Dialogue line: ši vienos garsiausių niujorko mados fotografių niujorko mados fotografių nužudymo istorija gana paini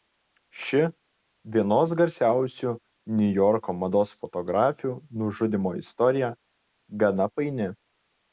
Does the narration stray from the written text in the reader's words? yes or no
yes